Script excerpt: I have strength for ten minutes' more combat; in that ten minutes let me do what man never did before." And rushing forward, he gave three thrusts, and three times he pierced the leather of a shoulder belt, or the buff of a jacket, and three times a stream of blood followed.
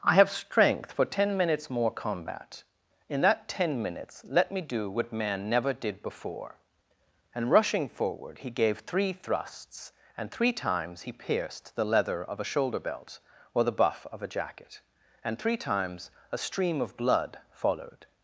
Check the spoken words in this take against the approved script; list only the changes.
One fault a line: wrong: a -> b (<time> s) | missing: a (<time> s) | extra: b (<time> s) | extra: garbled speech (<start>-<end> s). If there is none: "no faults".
no faults